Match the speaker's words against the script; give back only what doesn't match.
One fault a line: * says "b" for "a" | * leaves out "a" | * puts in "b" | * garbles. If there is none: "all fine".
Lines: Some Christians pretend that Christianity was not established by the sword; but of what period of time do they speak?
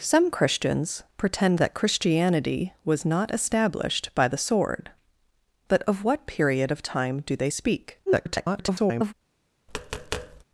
* garbles